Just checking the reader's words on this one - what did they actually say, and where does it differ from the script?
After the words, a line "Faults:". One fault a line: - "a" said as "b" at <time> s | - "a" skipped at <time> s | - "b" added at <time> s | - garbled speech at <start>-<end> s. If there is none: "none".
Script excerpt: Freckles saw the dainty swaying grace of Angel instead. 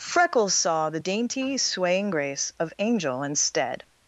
Freckles saw the dainty swaying grace of Angel instead.
Faults:
none